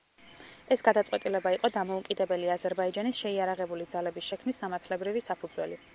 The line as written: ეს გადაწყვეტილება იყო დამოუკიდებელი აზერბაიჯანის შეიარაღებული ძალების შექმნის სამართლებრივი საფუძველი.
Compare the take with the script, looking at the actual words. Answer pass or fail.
pass